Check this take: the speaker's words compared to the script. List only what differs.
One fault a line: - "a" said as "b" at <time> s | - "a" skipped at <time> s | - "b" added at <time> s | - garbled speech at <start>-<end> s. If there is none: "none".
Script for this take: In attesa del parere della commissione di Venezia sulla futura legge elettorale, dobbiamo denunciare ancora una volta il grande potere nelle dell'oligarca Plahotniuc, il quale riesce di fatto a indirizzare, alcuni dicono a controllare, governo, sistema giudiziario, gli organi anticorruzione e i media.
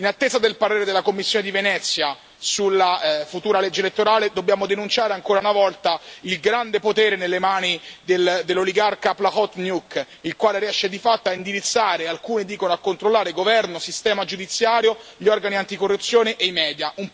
- "mani" added at 7.4 s